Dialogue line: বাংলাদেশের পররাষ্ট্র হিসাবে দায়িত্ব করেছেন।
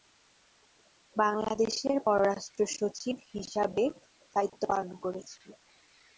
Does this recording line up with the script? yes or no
no